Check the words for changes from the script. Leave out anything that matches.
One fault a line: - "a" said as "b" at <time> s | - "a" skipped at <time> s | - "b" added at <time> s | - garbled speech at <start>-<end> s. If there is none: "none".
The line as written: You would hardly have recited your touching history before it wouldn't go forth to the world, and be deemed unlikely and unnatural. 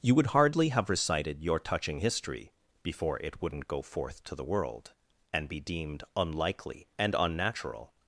none